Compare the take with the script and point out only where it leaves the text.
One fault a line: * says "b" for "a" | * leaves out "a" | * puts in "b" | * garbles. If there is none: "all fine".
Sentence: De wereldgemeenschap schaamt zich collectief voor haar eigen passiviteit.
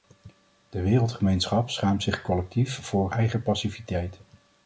* leaves out "haar"